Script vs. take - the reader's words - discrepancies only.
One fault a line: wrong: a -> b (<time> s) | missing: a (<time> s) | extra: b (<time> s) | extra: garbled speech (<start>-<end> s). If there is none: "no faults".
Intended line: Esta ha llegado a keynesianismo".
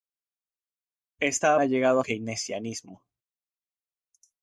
no faults